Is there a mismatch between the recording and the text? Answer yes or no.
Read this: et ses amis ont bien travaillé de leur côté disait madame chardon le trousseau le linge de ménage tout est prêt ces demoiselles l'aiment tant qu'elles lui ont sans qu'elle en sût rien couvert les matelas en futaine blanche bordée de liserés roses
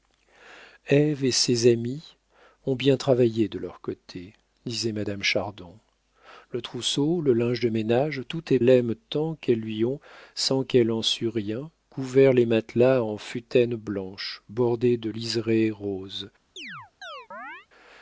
yes